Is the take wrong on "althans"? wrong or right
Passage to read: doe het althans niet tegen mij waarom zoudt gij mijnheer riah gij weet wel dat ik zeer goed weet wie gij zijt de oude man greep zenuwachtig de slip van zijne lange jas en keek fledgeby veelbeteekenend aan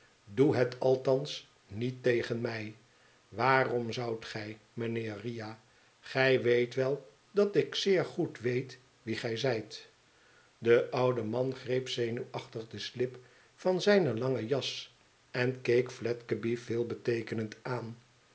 right